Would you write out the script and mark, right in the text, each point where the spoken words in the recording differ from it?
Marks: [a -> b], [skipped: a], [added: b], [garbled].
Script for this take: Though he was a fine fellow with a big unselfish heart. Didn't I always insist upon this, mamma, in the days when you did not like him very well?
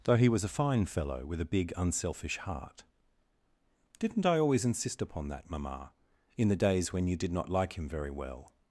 Though he was a fine fellow with a big unselfish heart. Didn't I always insist upon [this, -> that] mamma, in the days when you did not like him very well?